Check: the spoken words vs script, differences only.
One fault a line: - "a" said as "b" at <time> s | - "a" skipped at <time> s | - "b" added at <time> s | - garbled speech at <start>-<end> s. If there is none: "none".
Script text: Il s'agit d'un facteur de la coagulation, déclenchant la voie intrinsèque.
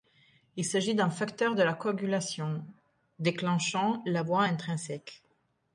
none